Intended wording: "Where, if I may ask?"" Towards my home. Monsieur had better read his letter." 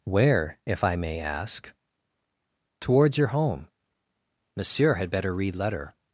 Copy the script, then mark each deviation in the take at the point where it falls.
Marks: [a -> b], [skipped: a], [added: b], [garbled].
"Where, if I may ask?"" Towards [my -> your] home. Monsieur had better read [skipped: his] letter."